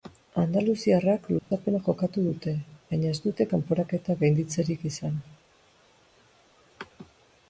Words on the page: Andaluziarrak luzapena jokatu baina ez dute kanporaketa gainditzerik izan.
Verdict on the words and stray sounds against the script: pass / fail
fail